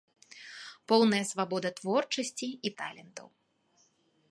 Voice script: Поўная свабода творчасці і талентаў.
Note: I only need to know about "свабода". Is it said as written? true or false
true